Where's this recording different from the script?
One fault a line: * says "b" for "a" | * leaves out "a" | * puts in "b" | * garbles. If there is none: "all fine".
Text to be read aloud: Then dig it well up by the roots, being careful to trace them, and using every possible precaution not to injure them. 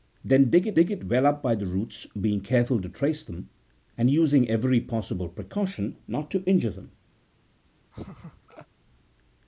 * puts in "dig it"